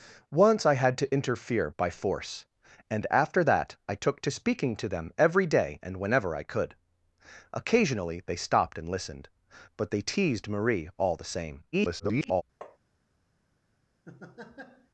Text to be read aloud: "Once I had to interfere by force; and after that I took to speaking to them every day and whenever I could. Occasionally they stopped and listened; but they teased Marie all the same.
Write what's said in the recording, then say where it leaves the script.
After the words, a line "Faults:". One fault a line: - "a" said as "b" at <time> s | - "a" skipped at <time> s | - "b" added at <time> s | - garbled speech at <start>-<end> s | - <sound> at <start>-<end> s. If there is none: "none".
"Once I had to interfere by force; and after that I took to speaking to them every day and whenever I could. Occasionally they stopped and listened; but they teased Marie all the same. [garbled]
Faults:
- garbled speech at 11.7-12.4 s
- tap at 12.6-12.8 s
- laugh at 14.1-14.9 s